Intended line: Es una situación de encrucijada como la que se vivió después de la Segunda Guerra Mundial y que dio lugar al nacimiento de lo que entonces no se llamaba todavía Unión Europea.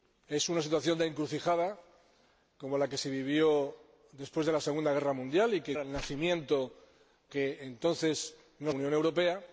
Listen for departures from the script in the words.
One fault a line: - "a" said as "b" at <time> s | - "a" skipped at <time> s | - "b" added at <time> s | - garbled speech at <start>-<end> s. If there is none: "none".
- "dio lugar" skipped at 5.8 s
- "de lo" skipped at 6.7 s
- "se llamaba todavía" skipped at 8.7 s